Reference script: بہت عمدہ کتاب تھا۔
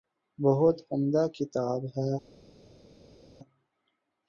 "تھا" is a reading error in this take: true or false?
true